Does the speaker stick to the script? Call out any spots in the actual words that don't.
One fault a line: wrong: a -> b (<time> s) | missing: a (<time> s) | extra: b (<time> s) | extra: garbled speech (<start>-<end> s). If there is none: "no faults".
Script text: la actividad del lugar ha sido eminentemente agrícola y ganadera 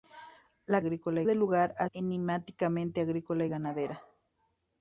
wrong: actividad -> agrícola (0.8 s)
missing: sido (1.9 s)